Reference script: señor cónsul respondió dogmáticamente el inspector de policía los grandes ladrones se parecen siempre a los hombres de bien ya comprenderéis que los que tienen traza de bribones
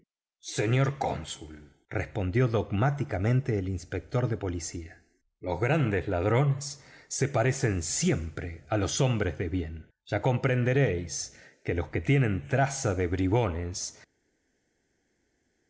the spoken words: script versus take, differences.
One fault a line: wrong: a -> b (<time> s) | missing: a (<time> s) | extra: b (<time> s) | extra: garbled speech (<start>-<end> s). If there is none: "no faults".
no faults